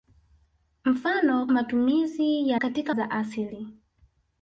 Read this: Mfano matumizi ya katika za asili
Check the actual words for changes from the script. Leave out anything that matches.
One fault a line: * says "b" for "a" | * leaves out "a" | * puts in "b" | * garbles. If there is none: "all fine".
all fine